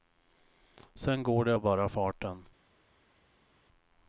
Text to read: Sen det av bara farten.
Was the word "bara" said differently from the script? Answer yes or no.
no